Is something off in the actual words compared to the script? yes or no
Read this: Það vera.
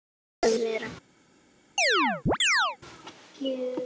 no